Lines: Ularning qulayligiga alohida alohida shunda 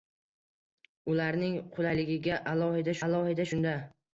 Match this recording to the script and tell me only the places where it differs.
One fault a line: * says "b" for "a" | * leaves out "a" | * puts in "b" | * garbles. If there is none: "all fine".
all fine